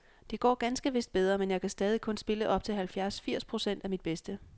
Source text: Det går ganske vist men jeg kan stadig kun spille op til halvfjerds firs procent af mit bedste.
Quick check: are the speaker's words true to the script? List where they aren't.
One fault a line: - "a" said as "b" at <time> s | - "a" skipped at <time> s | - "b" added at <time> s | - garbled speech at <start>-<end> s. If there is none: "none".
- "bedre" added at 1.1 s